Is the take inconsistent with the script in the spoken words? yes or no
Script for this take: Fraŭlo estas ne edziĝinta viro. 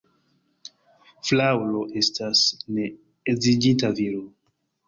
no